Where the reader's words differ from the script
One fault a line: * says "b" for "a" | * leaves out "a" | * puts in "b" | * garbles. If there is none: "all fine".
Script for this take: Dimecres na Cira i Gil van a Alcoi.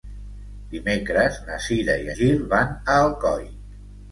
all fine